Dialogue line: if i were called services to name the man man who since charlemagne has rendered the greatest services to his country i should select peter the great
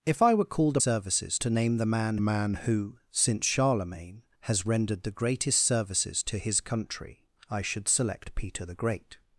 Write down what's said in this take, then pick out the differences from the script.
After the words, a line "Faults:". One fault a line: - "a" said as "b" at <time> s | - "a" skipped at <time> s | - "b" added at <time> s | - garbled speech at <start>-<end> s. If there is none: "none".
if i were called services to name the man man who since charlemagne has rendered the greatest services to his country i should select peter the great
Faults:
none